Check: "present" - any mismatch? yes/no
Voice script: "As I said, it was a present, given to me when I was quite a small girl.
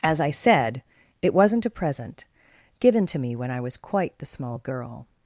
no